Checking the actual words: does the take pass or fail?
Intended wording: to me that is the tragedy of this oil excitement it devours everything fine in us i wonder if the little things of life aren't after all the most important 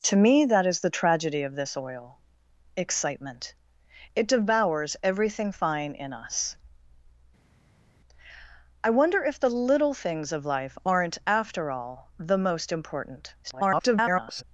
fail